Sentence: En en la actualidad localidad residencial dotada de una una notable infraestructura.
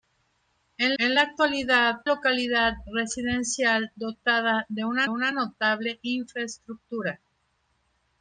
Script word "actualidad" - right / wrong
right